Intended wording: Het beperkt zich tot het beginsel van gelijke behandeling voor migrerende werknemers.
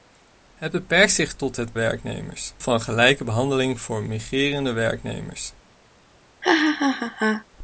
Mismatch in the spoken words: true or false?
true